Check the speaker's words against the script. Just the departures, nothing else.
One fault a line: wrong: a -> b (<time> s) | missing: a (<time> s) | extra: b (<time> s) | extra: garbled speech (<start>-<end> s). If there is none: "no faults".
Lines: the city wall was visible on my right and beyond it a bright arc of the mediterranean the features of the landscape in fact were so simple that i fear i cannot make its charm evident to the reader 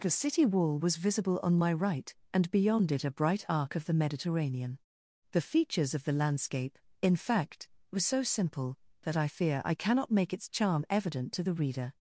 no faults